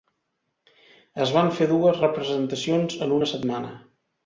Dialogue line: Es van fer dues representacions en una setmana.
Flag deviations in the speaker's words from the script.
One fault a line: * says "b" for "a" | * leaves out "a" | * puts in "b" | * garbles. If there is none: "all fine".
all fine